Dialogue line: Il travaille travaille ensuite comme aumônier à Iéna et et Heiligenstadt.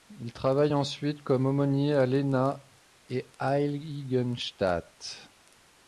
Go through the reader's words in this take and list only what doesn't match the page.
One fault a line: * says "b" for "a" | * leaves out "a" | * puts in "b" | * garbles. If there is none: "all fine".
* leaves out "travaille"
* leaves out "et"